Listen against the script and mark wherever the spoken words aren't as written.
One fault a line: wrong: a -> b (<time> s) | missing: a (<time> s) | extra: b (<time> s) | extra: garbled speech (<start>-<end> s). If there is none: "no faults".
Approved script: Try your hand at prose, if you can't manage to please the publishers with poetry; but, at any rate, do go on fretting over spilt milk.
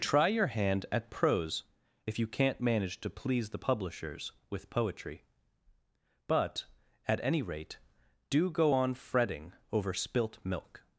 no faults